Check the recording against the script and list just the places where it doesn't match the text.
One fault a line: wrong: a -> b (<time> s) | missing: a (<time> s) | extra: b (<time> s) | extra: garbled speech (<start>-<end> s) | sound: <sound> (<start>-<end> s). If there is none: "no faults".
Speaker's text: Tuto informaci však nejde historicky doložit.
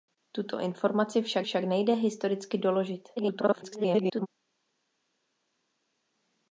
extra: však (1.4 s)
extra: garbled speech (3.2-4.3 s)